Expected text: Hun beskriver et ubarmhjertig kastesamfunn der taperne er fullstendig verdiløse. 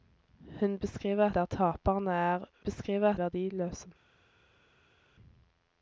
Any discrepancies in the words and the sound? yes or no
yes